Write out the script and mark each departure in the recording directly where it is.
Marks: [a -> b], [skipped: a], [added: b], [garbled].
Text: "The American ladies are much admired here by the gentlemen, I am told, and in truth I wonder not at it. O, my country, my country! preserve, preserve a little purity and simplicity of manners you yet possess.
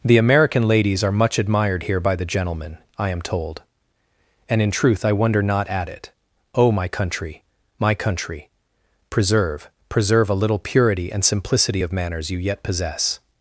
"The American ladies are much admired here by the gentlemen, I am told, and in truth I wonder not at it. O, my country, my country! preserve, preserve a little purity and simplicity of manners you yet possess.